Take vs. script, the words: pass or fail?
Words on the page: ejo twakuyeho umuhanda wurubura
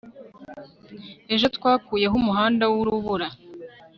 pass